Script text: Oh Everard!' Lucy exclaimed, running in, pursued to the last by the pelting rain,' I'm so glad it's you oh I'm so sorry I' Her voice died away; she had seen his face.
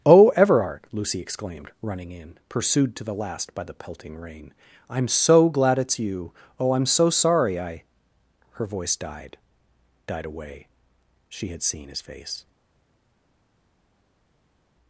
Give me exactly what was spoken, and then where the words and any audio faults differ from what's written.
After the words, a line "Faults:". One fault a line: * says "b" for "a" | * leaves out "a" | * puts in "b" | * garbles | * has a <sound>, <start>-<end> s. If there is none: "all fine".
Oh Everard!' Lucy exclaimed, running in, pursued to the last by the pelting rain,' I'm so glad it's you oh I'm so sorry I' Her voice died died away; she had seen his face.
Faults:
* puts in "died"